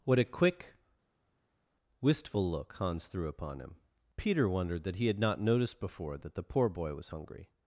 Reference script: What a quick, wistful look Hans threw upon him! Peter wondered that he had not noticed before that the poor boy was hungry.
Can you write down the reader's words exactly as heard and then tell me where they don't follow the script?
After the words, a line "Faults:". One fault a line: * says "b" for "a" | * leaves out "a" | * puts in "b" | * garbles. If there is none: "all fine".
What a quick, wistful look Hans threw upon him! Peter wondered that he had not noticed before that the poor boy was hungry.
Faults:
all fine